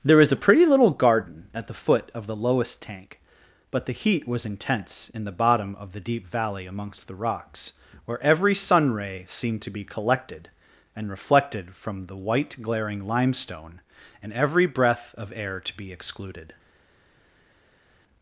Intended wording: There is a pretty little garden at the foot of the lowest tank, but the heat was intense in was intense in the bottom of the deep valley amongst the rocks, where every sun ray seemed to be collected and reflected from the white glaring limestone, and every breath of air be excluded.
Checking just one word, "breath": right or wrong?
right